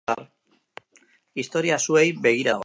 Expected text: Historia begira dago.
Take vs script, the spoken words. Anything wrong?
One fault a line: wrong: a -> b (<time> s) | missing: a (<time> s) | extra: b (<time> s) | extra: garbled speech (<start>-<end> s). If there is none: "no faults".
extra: zuei (1.8 s)